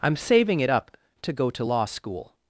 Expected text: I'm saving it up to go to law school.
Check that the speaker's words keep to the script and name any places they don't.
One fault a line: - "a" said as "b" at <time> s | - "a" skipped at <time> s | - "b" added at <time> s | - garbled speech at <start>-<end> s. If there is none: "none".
none